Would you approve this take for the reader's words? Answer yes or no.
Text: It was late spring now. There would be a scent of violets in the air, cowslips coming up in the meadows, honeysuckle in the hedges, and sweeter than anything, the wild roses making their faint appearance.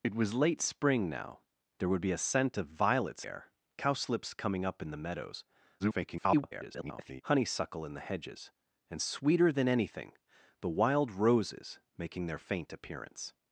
no